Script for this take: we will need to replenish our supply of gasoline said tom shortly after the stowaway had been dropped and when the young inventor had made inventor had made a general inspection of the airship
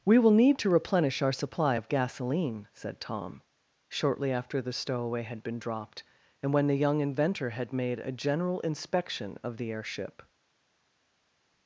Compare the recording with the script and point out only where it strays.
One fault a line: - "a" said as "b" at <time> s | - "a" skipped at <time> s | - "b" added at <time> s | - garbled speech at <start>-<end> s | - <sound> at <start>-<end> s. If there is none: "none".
- "inventor had made" skipped at 8.0 s